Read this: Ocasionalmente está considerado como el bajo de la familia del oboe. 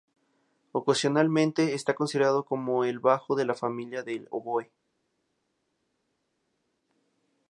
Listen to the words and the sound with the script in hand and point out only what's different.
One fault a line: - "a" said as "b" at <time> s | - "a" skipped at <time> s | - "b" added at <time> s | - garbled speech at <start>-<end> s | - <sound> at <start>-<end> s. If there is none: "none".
none